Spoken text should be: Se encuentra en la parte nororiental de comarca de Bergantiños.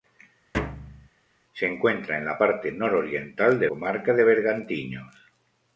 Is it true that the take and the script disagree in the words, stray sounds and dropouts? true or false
true